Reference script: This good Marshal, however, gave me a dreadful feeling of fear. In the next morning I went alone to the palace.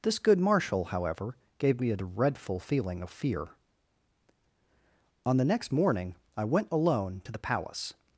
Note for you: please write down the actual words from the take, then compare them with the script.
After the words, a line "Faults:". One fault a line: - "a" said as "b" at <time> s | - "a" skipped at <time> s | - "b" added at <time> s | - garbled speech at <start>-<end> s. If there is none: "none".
This good Marshal, however, gave me a dreadful feeling of fear. On the next morning I went alone to the palace.
Faults:
- "In" said as "On" at 5.3 s